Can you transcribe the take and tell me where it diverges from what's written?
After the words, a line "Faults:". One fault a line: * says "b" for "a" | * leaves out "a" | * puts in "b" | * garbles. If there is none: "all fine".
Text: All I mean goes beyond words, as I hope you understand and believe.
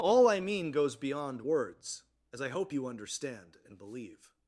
All I mean goes beyond words, as I hope you understand and believe.
Faults:
all fine